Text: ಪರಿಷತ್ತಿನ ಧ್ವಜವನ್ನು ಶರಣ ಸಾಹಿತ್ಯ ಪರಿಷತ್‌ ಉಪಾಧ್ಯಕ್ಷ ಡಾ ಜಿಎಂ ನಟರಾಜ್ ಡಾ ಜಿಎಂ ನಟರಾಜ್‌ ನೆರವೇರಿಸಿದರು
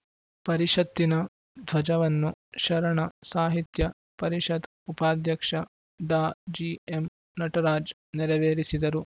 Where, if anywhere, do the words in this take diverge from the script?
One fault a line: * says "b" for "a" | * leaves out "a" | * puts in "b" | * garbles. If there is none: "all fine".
* leaves out "ಡಾ ಜಿಎಂ ನಟರಾಜ್"